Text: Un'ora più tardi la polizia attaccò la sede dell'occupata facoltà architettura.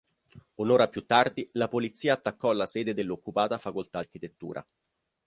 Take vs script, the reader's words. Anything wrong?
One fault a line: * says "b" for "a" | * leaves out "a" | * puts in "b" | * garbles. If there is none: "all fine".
all fine